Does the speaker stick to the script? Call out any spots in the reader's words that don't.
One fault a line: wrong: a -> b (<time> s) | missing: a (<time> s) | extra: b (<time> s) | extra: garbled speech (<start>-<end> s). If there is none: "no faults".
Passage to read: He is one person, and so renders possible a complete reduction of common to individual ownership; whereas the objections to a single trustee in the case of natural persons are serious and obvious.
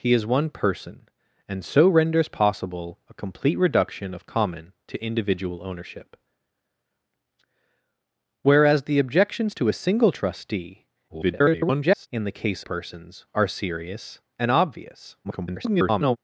extra: garbled speech (11.1-12.1 s)
missing: of natural (12.6 s)
extra: garbled speech (15.2-16.2 s)